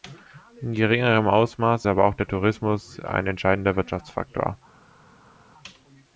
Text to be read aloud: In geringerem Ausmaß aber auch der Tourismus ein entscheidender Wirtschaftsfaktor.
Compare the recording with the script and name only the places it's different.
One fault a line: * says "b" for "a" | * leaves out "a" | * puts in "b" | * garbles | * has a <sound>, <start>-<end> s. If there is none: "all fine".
all fine